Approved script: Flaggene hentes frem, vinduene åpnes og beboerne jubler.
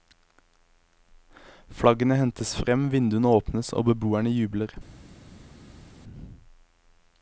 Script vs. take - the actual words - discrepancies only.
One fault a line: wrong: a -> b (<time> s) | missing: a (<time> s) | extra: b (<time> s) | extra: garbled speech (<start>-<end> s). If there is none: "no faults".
no faults